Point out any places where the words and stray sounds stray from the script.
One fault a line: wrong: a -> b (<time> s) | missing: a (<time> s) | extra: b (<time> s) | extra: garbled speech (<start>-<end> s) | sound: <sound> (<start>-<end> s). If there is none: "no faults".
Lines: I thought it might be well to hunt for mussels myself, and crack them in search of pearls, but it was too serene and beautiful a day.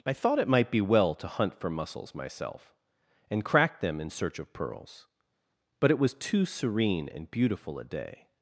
no faults